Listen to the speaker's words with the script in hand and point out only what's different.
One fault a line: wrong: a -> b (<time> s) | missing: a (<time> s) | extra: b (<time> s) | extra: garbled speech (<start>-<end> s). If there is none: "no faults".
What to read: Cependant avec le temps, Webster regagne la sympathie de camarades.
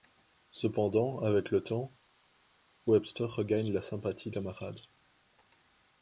no faults